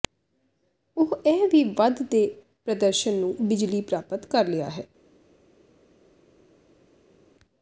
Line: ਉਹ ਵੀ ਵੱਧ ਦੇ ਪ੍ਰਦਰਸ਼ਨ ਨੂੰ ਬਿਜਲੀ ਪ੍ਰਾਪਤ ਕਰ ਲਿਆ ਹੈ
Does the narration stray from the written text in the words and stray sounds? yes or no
yes